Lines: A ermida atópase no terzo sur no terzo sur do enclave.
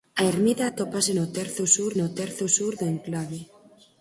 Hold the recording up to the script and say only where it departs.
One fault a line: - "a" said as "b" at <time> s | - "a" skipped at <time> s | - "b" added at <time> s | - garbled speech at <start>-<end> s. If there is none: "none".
none